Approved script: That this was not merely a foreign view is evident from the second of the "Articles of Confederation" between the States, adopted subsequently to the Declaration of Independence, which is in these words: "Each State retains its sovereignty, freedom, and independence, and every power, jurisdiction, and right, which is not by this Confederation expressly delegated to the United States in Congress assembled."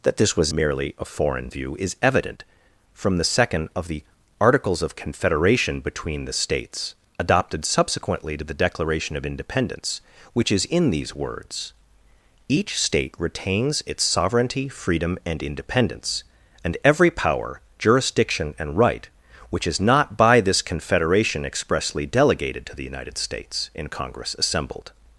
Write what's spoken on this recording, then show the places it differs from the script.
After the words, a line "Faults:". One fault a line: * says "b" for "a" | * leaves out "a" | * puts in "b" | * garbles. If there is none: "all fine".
That this was merely a foreign view is evident from the second of the "Articles of Confederation" between the States, adopted subsequently to the Declaration of Independence, which is in these words: "Each State retains its sovereignty, freedom, and independence, and every power, jurisdiction, and right, which is not by this Confederation expressly delegated to the United States in Congress assembled."
Faults:
* leaves out "not"